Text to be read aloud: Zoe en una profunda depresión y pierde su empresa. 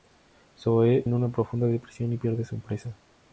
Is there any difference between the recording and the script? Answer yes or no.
no